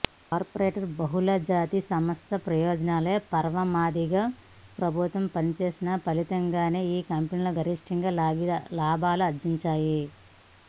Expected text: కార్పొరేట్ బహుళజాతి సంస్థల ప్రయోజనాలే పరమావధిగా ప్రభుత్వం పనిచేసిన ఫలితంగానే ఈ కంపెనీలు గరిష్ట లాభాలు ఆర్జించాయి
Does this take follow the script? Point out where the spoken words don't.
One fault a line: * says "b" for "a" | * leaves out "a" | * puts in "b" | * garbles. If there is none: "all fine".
all fine